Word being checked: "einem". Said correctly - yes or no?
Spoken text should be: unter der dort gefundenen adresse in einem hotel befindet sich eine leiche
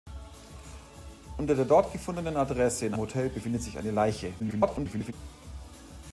no